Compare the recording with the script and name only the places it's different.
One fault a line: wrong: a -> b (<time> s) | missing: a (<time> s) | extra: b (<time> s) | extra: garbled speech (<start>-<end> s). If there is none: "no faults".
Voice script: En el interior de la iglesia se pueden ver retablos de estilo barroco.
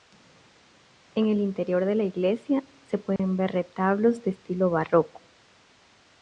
no faults